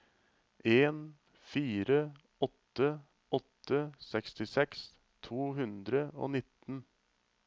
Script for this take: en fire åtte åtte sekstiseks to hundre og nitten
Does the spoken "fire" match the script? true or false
true